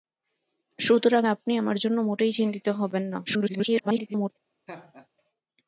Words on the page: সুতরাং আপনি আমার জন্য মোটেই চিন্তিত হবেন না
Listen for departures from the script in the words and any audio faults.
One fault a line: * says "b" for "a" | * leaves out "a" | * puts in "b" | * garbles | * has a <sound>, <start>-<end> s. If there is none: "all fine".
* garbles
* has a laugh, 4.7-5.1 s